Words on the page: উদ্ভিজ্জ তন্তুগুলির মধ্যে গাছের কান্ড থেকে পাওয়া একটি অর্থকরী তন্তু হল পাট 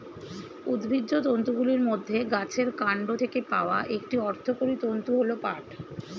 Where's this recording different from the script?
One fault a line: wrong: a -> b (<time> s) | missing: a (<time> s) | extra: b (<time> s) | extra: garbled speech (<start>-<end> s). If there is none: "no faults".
no faults